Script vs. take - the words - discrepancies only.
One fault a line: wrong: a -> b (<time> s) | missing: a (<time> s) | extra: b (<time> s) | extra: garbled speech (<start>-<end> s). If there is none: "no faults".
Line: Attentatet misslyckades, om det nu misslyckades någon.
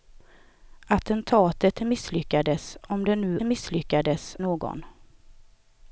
no faults